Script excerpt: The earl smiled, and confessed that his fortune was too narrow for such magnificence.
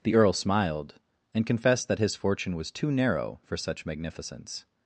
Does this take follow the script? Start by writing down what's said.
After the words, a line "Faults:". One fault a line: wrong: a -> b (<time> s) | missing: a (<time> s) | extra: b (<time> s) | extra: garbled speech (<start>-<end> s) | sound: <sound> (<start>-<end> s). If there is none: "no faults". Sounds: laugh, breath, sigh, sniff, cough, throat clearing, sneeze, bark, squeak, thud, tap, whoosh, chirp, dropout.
The earl smiled, and confessed that his fortune was too narrow for such magnificence.
Faults:
no faults